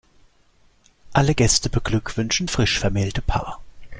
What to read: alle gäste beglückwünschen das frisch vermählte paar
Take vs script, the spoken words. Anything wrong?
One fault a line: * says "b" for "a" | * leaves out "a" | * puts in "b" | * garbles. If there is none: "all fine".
* leaves out "das"